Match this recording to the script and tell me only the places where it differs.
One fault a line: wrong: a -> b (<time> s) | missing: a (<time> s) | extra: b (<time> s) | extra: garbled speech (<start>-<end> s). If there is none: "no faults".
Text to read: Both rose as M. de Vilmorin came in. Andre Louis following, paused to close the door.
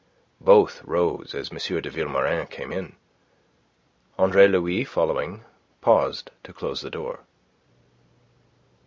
no faults